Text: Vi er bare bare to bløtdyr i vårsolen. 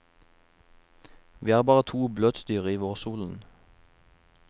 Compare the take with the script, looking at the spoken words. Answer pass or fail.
fail